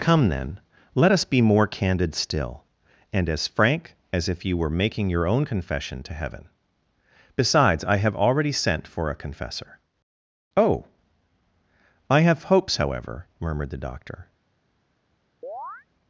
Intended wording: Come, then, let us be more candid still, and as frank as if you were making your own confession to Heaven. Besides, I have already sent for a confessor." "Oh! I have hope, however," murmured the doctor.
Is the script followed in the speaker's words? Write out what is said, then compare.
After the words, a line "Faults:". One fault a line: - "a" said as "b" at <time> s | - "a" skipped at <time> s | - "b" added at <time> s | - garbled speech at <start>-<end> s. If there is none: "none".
Come, then, let us be more candid still, and as frank as if you were making your own confession to Heaven. Besides, I have already sent for a confessor." "Oh! I have hopes, however," murmured the doctor.
Faults:
- "hope" said as "hopes" at 12.5 s